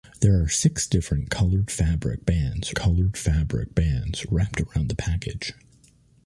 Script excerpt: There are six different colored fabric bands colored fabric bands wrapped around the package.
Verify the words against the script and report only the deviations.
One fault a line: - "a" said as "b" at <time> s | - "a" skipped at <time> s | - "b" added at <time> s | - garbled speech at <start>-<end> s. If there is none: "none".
none